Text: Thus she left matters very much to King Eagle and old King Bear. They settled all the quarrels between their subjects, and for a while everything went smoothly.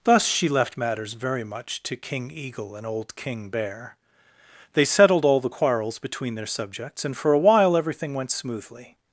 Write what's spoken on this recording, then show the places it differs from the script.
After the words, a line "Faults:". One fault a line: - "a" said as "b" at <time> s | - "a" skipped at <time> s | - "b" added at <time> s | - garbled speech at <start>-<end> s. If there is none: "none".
Thus she left matters very much to King Eagle and old King Bear. They settled all the quarrels between their subjects, and for a while everything went smoothly.
Faults:
none